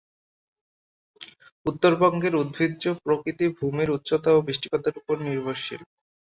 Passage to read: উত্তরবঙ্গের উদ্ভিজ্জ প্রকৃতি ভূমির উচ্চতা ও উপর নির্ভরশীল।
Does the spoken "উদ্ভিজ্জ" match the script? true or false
true